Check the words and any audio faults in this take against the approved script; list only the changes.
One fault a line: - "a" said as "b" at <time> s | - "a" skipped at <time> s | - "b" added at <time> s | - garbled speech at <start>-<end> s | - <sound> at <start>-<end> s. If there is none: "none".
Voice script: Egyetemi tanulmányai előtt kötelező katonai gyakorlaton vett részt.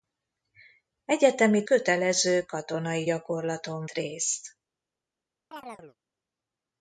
- "tanulmányai előtt" skipped at 1.6 s
- "vett" skipped at 3.9 s
- chirp at 5.5-6.0 s